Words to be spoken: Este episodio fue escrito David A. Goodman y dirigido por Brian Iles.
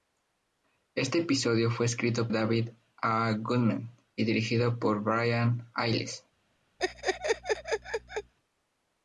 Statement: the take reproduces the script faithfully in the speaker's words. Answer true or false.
true